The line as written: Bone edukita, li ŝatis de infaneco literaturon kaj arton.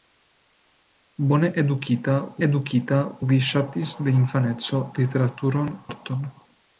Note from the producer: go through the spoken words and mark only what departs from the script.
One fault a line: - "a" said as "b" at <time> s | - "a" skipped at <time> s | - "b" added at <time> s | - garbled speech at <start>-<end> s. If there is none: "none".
- "edukita" added at 2.5 s
- "kaj" skipped at 5.7 s